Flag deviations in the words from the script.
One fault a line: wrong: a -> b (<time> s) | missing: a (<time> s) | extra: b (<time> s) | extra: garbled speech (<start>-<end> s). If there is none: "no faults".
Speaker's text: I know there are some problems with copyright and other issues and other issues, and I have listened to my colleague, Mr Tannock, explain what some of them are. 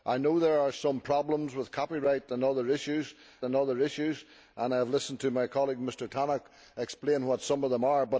no faults